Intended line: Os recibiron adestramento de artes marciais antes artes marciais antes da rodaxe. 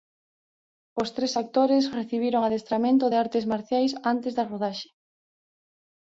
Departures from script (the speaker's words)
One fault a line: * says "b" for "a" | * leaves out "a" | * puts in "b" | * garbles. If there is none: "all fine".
* puts in "tres actores"
* leaves out "artes marciais antes"